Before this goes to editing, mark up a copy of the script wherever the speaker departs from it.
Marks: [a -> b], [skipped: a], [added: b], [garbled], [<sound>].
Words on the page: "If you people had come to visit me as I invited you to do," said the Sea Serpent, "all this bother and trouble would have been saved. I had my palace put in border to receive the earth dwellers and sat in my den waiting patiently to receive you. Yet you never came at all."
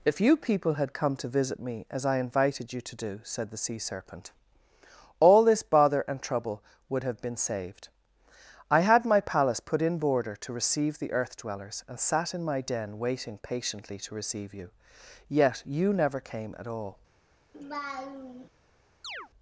"If you people had come to visit me as I invited you to do," said the Sea Serpent, "all this bother and trouble would have been saved. I had my palace put in border to receive the earth dwellers and sat in my den waiting patiently to receive you. Yet you never came at all." [laugh] [chirp]